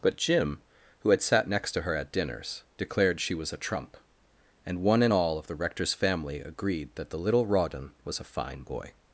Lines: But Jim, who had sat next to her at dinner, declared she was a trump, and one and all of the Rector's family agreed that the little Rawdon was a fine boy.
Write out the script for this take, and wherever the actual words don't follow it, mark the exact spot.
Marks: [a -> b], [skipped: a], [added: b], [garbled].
But Jim, who had sat next to her at [dinner, -> dinners] declared she was a trump, and one and all of the Rector's family agreed that the little Rawdon was a fine boy.